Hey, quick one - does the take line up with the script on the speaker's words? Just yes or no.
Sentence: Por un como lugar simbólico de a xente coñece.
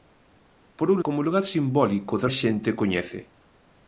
yes